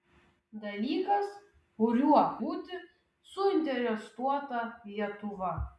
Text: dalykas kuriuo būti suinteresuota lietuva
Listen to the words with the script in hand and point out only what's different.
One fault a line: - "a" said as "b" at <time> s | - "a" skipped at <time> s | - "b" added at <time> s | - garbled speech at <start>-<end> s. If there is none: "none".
none